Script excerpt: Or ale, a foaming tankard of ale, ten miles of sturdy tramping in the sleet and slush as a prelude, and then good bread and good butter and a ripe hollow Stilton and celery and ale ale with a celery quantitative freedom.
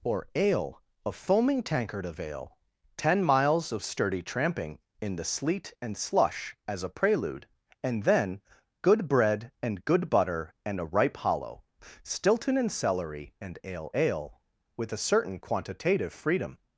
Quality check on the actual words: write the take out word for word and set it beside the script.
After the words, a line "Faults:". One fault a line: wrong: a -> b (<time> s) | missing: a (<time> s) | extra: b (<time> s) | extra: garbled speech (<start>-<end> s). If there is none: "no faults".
Or ale, a foaming tankard of ale, ten miles of sturdy tramping in the sleet and slush as a prelude, and then good bread and good butter and a ripe hollow Stilton and celery and ale ale with a certain quantitative freedom.
Faults:
wrong: celery -> certain (15.0 s)